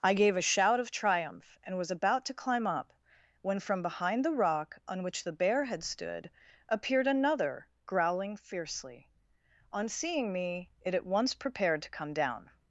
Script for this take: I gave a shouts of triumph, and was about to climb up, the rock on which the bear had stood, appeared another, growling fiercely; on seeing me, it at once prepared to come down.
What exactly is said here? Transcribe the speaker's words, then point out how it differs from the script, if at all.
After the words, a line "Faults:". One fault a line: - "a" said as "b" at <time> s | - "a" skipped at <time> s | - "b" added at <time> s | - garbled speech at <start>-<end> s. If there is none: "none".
I gave a shout of triumph, and was about to climb up, when, from behind the rock on which the bear had stood, appeared another, growling fiercely; on seeing me, it at once prepared to come down.
Faults:
- "shouts" said as "shout" at 0.4 s
- "when from behind" added at 3.4 s